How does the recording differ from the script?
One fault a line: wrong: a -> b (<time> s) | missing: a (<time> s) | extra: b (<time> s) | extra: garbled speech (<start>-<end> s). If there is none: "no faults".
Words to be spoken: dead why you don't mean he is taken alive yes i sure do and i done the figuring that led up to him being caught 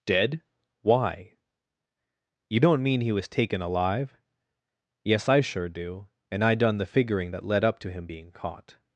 wrong: is -> was (3.1 s)